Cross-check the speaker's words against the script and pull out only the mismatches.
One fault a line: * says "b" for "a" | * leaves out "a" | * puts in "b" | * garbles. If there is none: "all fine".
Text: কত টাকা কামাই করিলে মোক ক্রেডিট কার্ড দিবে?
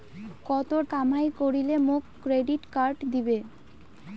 * leaves out "টাকা"